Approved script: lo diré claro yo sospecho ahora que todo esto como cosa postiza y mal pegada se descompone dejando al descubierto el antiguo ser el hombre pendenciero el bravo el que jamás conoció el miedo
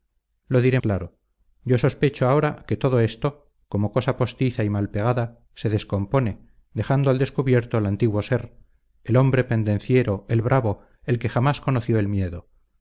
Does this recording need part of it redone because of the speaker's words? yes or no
no